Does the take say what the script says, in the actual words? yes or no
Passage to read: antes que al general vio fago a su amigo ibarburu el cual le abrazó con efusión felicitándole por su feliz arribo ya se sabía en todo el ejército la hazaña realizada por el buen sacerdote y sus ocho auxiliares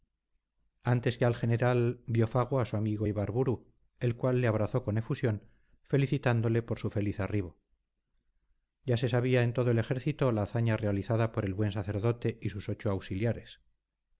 yes